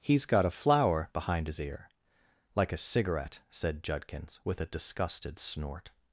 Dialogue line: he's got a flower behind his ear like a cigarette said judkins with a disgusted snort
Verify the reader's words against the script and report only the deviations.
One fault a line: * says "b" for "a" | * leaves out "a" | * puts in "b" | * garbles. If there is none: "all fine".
all fine